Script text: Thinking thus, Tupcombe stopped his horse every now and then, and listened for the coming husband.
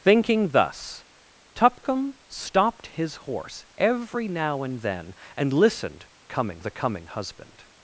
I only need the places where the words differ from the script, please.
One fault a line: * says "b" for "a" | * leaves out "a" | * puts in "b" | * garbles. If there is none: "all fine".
* says "coming" for "for"